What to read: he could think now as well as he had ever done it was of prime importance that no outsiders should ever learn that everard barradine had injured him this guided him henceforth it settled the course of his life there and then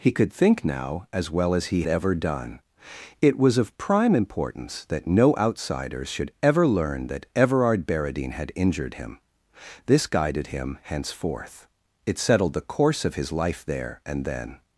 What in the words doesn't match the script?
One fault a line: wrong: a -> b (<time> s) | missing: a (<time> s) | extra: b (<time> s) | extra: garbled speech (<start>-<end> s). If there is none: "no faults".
missing: had (1.8 s)